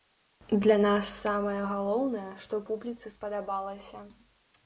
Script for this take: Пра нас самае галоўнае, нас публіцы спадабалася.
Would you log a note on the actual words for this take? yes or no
yes